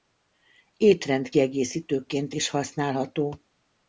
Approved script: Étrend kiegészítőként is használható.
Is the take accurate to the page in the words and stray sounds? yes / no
yes